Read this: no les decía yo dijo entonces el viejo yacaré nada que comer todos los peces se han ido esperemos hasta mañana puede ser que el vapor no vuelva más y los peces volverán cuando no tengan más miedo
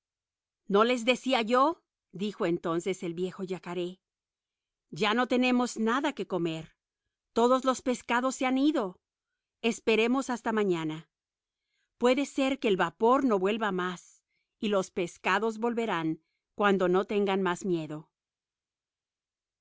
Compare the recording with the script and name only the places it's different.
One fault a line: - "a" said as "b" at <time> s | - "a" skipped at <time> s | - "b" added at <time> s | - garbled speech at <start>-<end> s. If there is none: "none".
- "ya no tenemos" added at 4.9 s